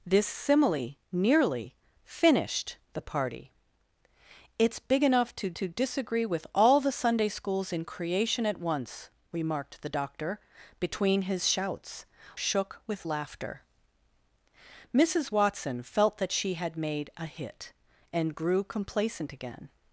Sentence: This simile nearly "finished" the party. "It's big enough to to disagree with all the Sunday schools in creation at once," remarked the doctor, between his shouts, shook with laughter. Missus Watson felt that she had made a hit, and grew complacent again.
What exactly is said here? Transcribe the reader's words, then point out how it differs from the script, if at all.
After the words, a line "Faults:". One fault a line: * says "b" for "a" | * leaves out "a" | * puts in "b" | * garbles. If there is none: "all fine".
This simile nearly "finished" the party. "It's big enough to to disagree with all the Sunday schools in creation at once," remarked the doctor, between his shouts, shook with laughter. Missus Watson felt that she had made a hit, and grew complacent again.
Faults:
all fine